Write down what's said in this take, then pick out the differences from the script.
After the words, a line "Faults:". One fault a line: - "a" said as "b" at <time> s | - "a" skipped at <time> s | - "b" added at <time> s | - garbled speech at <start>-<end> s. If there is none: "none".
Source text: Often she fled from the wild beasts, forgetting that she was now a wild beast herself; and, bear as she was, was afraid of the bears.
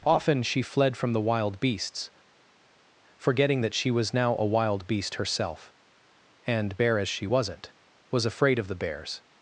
Often she fled from the wild beasts, forgetting that she was now a wild beast herself; and, bear as she wasn't, was afraid of the bears.
Faults:
- "was" said as "wasn't" at 7.2 s